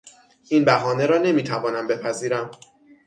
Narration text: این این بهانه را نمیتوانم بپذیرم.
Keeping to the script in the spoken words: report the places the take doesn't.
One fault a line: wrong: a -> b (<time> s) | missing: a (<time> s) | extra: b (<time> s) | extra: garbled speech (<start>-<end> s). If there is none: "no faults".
missing: این (0.7 s)